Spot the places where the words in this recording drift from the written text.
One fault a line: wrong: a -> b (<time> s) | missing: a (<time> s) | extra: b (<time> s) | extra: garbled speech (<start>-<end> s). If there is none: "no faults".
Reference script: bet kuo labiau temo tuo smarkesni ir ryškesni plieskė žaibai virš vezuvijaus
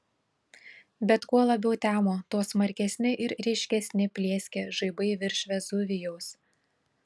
no faults